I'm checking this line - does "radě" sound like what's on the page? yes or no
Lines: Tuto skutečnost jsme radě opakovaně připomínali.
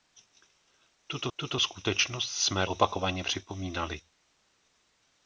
no